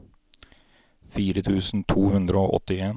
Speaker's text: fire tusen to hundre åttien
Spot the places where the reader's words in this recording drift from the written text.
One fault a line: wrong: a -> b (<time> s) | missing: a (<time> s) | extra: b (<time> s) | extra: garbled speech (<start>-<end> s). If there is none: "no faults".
extra: og (2.4 s)